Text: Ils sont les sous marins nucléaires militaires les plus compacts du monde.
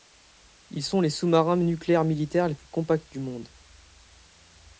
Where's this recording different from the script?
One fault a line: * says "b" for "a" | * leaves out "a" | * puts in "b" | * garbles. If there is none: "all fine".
all fine